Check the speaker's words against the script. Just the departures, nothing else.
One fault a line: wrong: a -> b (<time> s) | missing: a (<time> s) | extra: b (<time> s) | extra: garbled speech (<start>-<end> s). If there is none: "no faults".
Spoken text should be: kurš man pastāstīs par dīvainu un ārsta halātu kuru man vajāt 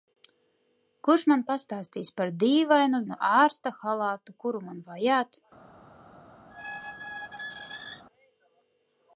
no faults